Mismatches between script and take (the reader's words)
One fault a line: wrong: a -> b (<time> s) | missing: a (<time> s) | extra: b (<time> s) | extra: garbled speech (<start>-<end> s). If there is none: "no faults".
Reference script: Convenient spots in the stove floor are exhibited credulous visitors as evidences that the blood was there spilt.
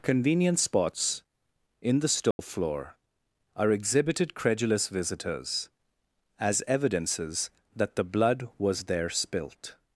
no faults